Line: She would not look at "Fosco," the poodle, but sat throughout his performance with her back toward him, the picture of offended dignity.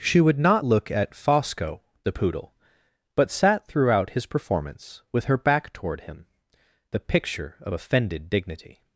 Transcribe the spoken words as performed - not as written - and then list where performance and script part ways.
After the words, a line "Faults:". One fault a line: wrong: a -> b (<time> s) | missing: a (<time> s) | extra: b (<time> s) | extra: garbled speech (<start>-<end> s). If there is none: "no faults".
She would not look at "Fosco," the poodle, but sat throughout his performance with her back toward him, the picture of offended dignity.
Faults:
no faults